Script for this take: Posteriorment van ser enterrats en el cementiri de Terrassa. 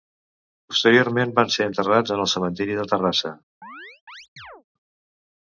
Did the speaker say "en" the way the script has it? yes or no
yes